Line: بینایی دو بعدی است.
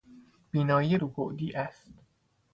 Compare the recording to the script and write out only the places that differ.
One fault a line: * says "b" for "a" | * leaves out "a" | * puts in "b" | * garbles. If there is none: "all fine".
all fine